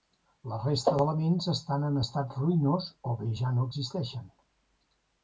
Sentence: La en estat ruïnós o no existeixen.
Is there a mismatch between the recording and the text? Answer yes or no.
yes